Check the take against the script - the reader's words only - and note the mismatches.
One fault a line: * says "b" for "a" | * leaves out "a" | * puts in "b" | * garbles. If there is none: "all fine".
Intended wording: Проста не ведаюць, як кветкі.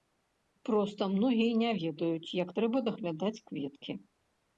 * puts in "многія"
* puts in "трэба даглядаць"